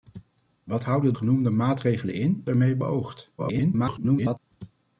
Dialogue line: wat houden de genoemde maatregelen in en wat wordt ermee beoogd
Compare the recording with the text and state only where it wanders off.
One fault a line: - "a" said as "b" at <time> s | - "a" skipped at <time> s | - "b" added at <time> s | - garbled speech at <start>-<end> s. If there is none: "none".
- "de" skipped at 1.1 s
- "en wat wordt" skipped at 2.4 s
- garbled speech at 3.4-4.4 s